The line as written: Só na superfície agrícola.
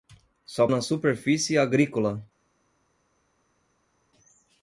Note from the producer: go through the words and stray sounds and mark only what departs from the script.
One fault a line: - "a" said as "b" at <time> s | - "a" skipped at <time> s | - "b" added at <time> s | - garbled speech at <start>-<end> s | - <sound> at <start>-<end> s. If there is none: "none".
none